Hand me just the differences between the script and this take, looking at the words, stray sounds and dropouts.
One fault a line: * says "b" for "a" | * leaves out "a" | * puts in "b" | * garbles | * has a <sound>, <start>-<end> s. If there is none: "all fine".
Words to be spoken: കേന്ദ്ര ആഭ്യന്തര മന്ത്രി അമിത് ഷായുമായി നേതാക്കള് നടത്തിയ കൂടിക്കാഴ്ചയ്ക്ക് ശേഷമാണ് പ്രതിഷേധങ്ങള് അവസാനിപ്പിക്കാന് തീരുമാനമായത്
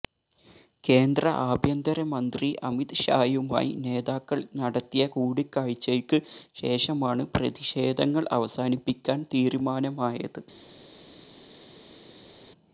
all fine